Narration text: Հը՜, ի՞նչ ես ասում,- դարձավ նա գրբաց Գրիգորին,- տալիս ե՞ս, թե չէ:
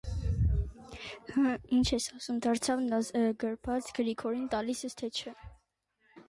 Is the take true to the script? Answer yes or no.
yes